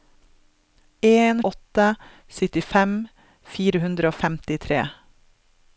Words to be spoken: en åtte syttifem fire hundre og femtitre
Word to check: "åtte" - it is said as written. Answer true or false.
true